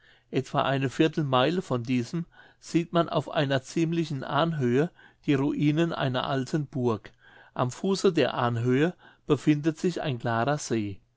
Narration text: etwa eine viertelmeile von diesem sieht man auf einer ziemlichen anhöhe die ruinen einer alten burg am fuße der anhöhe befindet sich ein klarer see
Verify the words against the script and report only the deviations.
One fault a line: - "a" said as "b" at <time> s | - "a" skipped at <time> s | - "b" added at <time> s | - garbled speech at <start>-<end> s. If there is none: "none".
none